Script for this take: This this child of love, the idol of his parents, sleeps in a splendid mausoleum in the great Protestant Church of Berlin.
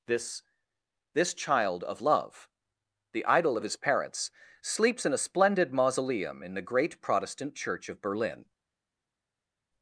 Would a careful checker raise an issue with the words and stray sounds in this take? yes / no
no